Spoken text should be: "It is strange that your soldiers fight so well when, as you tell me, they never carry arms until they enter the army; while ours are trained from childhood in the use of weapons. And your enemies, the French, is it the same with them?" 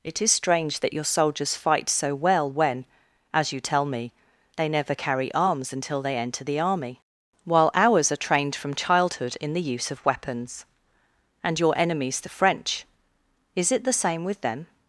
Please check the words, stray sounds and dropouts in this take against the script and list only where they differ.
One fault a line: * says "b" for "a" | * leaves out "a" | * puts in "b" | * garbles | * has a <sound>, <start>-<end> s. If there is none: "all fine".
all fine